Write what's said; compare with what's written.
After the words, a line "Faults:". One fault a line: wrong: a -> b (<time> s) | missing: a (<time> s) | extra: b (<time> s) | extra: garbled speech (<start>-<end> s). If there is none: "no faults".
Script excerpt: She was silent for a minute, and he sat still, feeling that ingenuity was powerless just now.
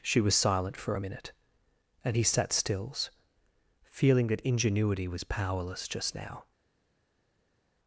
She was silent for a minute, and he sat stills, feeling that ingenuity was powerless just now.
Faults:
wrong: still -> stills (2.5 s)